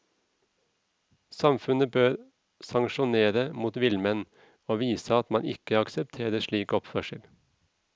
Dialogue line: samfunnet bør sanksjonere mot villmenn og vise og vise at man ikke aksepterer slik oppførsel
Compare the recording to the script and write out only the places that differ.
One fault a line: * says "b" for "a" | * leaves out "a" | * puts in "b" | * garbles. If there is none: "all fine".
* leaves out "og vise"